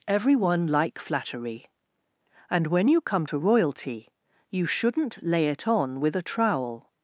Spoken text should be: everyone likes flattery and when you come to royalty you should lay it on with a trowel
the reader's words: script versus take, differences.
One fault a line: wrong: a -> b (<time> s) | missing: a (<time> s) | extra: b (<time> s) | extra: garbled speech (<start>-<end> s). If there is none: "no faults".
wrong: likes -> like (0.7 s)
wrong: should -> shouldn't (4.7 s)